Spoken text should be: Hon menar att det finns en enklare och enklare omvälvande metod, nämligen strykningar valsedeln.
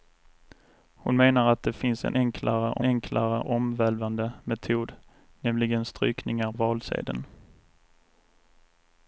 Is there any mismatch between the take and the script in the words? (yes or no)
no